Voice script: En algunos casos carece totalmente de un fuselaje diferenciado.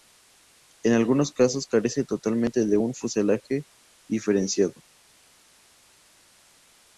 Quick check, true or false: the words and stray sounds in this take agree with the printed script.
true